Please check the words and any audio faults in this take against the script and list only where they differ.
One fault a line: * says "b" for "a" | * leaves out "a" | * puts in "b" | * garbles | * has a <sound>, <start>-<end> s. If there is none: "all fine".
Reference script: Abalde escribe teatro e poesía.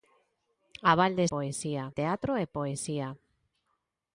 * says "poesía" for "escribe"